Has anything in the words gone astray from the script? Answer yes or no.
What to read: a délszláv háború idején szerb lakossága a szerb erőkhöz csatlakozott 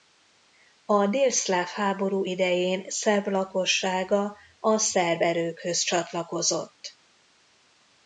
no